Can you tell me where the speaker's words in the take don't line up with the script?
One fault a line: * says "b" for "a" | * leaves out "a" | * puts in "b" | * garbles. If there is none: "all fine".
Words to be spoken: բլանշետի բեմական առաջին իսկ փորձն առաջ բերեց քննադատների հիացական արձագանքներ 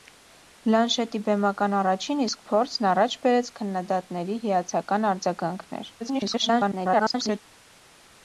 * garbles